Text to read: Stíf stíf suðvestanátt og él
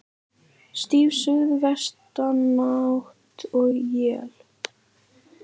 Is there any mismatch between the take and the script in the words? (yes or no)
yes